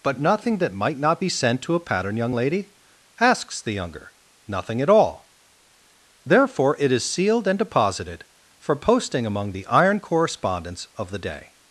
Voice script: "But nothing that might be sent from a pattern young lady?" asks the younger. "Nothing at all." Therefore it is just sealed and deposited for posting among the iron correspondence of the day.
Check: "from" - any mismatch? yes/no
yes